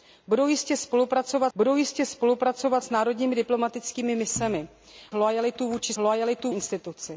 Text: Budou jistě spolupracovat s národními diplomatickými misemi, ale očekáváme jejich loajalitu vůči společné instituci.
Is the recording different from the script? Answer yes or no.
yes